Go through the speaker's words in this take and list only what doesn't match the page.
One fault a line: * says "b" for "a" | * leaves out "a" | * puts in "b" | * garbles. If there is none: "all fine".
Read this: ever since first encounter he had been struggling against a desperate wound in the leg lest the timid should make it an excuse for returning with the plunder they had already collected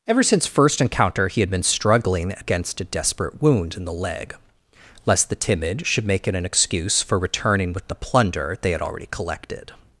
all fine